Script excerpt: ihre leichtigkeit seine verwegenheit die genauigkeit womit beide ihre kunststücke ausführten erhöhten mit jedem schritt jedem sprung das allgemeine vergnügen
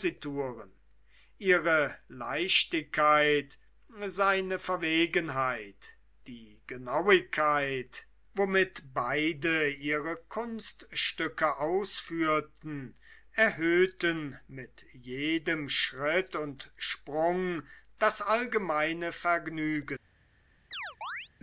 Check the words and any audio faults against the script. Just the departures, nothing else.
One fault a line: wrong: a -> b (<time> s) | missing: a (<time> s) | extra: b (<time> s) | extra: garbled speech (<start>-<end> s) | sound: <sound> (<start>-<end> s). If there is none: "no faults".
wrong: jedem -> und (16.4 s)
sound: chirp (20.7-21.3 s)